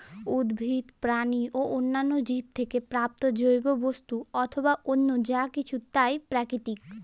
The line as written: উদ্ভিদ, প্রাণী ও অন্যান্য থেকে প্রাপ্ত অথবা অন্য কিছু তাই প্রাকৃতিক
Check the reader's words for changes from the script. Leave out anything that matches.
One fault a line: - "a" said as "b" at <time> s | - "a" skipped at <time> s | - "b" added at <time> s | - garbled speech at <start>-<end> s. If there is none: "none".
- "জীব" added at 2.2 s
- "জৈব বস্তু" added at 3.3 s
- "যা" added at 5.2 s